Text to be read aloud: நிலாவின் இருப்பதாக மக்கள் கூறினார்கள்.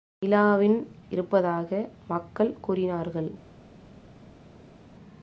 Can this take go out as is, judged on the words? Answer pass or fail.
pass